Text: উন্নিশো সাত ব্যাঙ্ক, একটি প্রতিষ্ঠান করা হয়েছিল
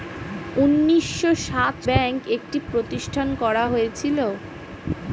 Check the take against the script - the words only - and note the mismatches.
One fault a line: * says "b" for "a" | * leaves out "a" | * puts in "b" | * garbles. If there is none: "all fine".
all fine